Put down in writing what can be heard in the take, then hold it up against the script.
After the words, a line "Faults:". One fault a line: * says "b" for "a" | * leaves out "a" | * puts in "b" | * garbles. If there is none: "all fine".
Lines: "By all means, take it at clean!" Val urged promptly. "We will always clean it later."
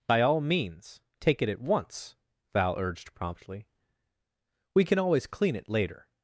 "By all means, take it at once!" Val urged promptly. "We can always clean it later."
Faults:
* says "once" for "clean"
* says "can" for "will"